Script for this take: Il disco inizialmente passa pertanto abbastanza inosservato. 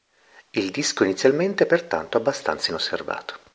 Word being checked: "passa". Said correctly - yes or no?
no